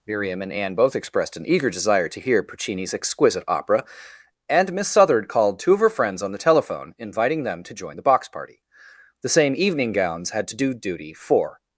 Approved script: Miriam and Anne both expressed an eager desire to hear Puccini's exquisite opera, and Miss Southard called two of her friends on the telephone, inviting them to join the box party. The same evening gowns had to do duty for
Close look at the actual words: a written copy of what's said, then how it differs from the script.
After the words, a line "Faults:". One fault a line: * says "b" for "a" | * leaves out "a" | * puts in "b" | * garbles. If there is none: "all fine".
Miriam and Anne both expressed an eager desire to hear Puccini's exquisite opera, and Miss Southard called two of her friends on the telephone, inviting them to join the box party. The same evening gowns had to do duty for
Faults:
all fine